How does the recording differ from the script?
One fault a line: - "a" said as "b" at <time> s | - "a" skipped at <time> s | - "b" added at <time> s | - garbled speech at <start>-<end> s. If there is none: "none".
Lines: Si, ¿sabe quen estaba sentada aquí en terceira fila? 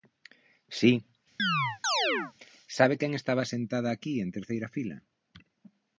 none